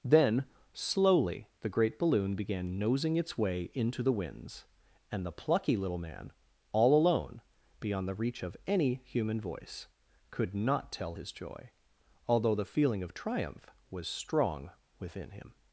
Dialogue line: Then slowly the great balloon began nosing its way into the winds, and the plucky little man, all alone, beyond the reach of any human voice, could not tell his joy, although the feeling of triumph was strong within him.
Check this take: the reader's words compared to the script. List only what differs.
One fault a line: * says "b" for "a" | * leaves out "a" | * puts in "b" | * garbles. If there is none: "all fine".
all fine